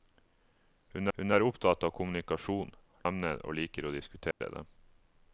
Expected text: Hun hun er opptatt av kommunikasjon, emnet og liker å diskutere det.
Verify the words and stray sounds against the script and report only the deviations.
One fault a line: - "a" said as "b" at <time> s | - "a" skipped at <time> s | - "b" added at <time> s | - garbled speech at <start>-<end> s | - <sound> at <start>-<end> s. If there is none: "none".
- dropout at 4.3-4.4 s